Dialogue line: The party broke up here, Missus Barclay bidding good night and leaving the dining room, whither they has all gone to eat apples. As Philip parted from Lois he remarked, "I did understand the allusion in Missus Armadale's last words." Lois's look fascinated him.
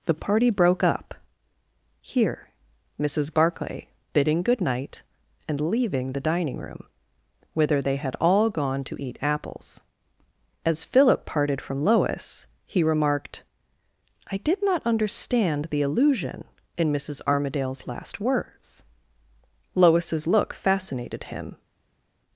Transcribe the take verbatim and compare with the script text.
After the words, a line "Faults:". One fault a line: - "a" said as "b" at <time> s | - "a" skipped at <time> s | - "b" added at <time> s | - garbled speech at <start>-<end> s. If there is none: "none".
The party broke up here, Missus Barclay bidding good night and leaving the dining room, whither they had all gone to eat apples. As Philip parted from Lois he remarked, "I did not understand the allusion in Missus Armadale's last words." Lois's look fascinated him.
Faults:
- "has" said as "had" at 8.0 s
- "not" added at 14.6 s